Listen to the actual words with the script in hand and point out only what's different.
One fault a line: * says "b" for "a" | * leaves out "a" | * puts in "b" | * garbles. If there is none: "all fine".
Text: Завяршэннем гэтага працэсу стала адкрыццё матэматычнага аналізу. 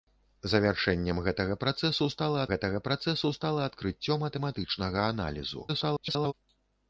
* puts in "гэтага працэсу стала"
* garbles